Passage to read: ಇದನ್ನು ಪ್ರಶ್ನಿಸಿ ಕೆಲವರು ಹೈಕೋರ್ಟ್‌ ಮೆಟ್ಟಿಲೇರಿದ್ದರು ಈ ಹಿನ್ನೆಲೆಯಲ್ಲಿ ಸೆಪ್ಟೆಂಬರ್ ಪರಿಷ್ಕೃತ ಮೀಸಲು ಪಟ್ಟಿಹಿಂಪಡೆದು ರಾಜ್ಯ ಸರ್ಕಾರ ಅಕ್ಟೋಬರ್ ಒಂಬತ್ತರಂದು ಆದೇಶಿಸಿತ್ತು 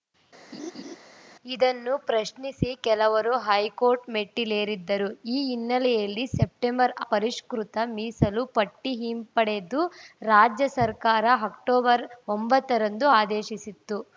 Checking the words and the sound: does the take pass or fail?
fail